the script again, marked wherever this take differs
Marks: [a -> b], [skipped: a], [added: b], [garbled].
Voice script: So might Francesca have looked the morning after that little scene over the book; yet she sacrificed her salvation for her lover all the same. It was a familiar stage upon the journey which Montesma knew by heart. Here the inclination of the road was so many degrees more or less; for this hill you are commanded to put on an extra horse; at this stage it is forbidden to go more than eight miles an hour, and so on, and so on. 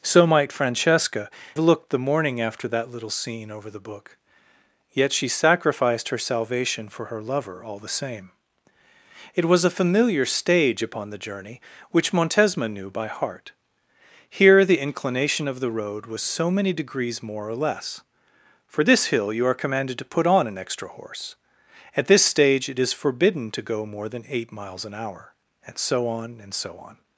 So might Francesca [skipped: have] looked the morning after that little scene over the book; yet she sacrificed her salvation for her lover all the same. It was a familiar stage upon the journey which Montesma knew by heart. Here the inclination of the road was so many degrees more or less; for this hill you are commanded to put on an extra horse; at this stage it is forbidden to go more than eight miles an hour, and so on, and so on.